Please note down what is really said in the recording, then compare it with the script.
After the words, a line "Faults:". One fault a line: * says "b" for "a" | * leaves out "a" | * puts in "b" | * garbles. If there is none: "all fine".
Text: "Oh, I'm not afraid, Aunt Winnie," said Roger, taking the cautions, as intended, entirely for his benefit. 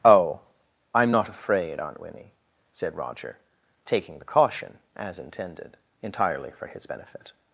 "Oh, I'm not afraid, Aunt Winnie," said Roger, taking the caution, as intended, entirely for his benefit.
Faults:
* says "caution" for "cautions"